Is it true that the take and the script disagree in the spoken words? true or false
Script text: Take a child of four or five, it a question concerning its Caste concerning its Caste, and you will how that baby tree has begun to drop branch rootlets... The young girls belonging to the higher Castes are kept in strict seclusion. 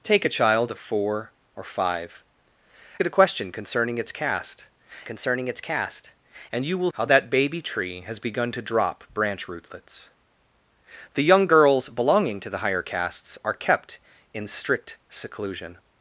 false